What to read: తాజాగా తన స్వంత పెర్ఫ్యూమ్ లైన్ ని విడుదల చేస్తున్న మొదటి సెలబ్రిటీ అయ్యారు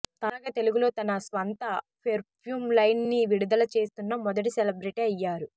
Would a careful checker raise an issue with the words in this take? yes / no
yes